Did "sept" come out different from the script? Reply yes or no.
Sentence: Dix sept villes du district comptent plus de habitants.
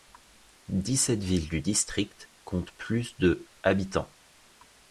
no